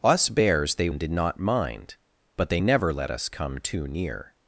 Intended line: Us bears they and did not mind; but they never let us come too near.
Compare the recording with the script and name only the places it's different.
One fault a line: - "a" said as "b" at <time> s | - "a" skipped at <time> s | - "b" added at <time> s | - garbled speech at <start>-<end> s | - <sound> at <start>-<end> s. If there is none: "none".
none